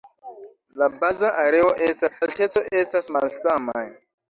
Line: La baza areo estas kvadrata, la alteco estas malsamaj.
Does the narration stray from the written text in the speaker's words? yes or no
yes